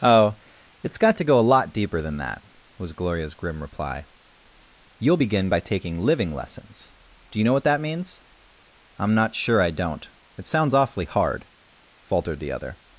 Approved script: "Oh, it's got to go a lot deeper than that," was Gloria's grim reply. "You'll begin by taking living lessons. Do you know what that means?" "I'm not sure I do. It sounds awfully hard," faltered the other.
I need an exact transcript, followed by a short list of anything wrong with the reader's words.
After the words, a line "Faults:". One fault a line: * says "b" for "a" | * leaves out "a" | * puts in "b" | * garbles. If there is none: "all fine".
"Oh, it's got to go a lot deeper than that," was Gloria's grim reply. "You'll begin by taking living lessons. Do you know what that means?" "I'm not sure I don't. It sounds awfully hard," faltered the other.
Faults:
* says "don't" for "do"